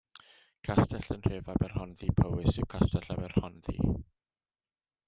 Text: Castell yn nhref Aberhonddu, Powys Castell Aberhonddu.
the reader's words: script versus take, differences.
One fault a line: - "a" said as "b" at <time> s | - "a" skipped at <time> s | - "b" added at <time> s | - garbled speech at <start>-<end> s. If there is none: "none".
- "yw" added at 2.6 s